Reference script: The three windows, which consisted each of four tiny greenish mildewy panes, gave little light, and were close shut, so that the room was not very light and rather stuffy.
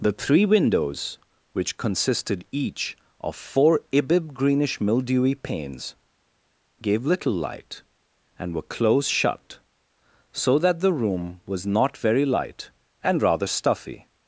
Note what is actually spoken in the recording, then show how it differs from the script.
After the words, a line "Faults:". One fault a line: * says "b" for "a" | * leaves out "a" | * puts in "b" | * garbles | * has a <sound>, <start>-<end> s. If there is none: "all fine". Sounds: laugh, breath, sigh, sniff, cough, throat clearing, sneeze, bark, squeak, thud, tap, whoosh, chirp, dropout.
The three windows, which consisted each of four ibib greenish mildewy panes, gave little light, and were close shut, so that the room was not very light and rather stuffy.
Faults:
* says "ibib" for "tiny"